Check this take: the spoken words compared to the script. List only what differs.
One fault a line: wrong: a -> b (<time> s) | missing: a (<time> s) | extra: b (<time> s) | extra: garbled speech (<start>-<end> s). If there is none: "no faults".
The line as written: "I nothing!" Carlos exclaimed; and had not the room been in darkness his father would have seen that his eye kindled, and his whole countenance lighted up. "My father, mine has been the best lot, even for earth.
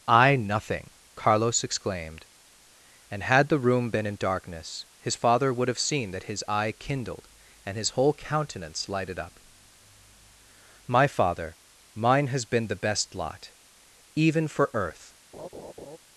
missing: not (3.5 s)